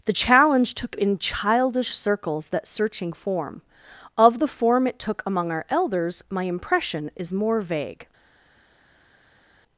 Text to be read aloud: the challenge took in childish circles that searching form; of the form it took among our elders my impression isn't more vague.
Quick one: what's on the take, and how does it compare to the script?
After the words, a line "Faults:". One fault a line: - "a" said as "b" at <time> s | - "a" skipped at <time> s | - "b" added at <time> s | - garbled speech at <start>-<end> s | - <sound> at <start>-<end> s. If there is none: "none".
the challenge took in childish circles that searching form; of the form it took among our elders my impression is more vague.
Faults:
- "isn't" said as "is" at 7.2 s